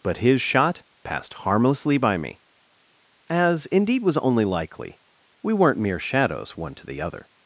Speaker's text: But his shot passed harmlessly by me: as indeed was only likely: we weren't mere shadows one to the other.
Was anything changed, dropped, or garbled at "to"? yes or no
no